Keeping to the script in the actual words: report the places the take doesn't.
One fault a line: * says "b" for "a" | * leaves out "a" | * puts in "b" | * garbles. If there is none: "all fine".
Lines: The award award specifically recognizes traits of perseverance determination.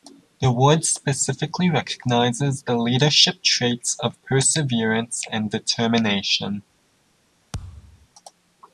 * leaves out "award"
* puts in "the leadership"
* puts in "and"